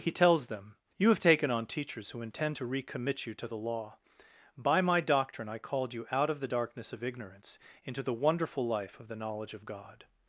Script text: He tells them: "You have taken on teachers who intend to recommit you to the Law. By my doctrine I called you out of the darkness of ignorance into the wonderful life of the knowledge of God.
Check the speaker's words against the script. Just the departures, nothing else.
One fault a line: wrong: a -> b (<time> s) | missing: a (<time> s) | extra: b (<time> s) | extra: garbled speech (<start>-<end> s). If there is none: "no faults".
no faults